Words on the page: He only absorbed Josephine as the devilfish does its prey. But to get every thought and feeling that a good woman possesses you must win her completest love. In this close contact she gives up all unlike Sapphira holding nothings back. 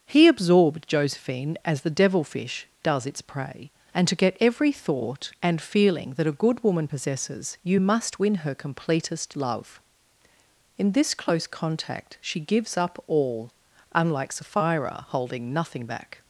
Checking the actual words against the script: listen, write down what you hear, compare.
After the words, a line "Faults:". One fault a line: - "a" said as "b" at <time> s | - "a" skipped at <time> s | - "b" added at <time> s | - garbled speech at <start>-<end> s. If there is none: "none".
He absorbed Josephine as the devilfish does its prey. And to get every thought and feeling that a good woman possesses you must win her completest love. In this close contact she gives up all unlike Sapphira holding nothing back.
Faults:
- "only" skipped at 0.3 s
- "But" said as "And" at 3.9 s
- "nothings" said as "nothing" at 15.5 s